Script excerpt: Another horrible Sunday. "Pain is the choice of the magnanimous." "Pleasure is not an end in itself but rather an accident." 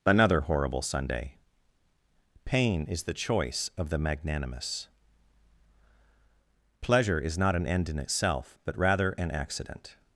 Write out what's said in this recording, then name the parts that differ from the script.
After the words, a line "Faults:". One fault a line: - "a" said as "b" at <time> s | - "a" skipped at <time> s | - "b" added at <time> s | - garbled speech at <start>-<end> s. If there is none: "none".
Another horrible Sunday. "Pain is the choice of the magnanimous." "Pleasure is not an end in itself but rather an accident."
Faults:
none